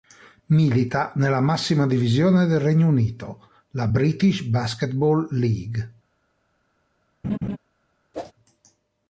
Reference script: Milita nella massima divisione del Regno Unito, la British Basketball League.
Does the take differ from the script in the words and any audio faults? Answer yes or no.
yes